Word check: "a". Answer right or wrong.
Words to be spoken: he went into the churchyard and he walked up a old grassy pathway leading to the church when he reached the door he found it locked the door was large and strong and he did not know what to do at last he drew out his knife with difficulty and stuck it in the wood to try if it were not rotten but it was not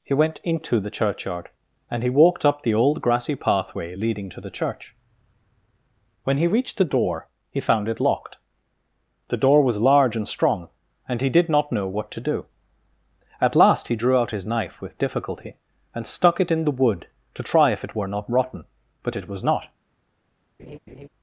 wrong